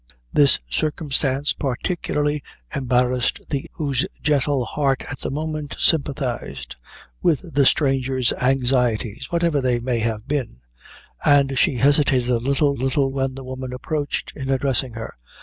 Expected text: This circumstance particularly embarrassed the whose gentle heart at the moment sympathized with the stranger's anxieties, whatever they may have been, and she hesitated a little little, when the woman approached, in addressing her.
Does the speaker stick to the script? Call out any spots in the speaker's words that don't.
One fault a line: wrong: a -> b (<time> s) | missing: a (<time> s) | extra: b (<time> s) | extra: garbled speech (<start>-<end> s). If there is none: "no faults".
no faults